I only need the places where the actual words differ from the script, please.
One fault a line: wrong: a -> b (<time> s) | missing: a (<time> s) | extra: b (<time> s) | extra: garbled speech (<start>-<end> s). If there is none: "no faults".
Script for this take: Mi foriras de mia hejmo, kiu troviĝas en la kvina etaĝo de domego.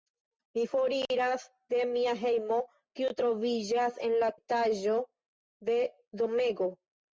missing: kvina (4.3 s)